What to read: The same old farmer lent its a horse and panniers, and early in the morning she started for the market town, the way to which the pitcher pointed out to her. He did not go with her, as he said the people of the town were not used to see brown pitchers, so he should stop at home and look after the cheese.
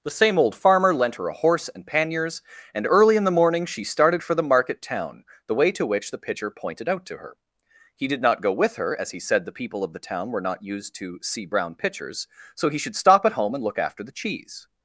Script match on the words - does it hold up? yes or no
no